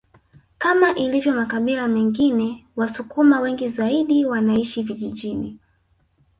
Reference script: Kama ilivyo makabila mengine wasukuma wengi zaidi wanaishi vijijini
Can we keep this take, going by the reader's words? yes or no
yes